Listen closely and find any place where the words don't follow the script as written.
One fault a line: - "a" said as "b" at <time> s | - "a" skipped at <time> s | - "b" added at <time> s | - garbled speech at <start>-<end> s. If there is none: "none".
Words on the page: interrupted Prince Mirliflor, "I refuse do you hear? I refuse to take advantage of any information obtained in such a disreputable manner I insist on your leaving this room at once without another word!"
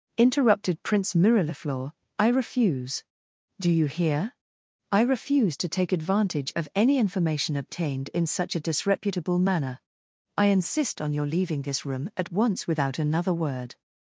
none